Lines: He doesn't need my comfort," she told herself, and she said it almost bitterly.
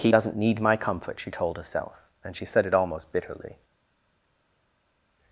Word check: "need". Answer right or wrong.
right